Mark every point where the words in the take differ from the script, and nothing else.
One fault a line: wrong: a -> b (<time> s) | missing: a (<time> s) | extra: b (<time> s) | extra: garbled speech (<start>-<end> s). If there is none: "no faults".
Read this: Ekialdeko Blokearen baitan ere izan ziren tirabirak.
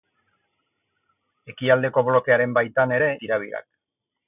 missing: izan ziren (3.1 s)